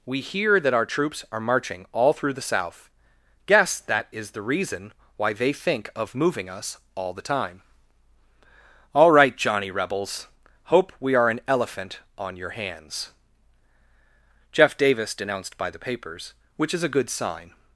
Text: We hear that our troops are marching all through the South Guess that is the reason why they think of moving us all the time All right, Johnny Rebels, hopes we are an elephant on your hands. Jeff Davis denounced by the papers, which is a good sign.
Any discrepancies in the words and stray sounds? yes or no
yes